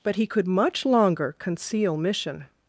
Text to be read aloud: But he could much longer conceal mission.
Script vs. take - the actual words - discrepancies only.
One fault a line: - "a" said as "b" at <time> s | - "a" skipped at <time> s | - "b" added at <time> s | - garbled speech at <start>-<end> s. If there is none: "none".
none